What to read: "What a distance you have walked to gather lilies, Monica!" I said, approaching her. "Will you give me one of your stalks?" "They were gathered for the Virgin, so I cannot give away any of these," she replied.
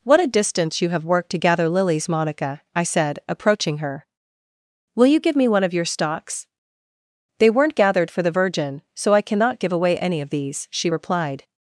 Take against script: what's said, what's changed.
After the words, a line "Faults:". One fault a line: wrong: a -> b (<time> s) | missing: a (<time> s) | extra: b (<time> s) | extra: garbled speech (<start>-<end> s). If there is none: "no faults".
"What a distance you have worked to gather lilies, Monica!" I said, approaching her. "Will you give me one of your stalks?" "They weren't gathered for the Virgin, so I cannot give away any of these," she replied.
Faults:
wrong: walked -> worked (1.1 s)
wrong: were -> weren't (7.5 s)